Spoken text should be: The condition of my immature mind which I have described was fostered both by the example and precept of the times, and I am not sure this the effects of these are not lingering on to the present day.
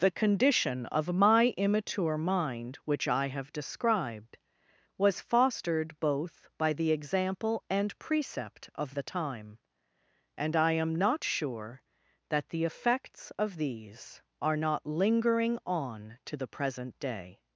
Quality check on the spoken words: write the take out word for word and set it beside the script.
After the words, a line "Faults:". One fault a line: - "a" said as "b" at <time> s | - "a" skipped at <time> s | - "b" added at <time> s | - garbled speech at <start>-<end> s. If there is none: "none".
The condition of my immature mind which I have described was fostered both by the example and precept of the time, and I am not sure that the effects of these are not lingering on to the present day.
Faults:
- "times" said as "time" at 9.0 s
- "this" said as "that" at 12.3 s